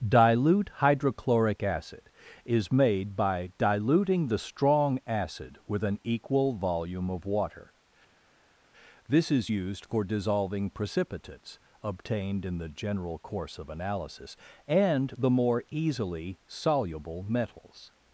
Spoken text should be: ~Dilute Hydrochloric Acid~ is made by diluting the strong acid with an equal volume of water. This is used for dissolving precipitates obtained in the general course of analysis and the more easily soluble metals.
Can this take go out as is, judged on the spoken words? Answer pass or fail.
pass